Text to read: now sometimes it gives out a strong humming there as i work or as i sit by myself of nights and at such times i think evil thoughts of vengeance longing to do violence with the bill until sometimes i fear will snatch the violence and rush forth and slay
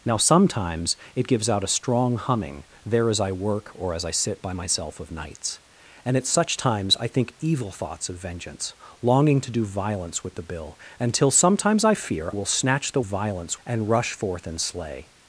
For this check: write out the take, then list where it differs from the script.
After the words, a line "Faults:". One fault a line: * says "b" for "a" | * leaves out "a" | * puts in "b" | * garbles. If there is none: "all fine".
now sometimes it gives out a strong humming there as i work or as i sit by myself of nights and at such times i think evil thoughts of vengeance longing to do violence with the bill until sometimes i fear will snatch the violence and rush forth and slay
Faults:
all fine